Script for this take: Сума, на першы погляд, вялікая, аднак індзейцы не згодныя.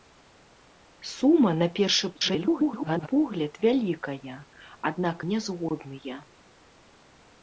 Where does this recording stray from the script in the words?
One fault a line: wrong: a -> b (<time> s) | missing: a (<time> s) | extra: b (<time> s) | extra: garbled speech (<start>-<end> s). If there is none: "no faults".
extra: garbled speech (2.1-3.1 s)
missing: індзейцы (5.2 s)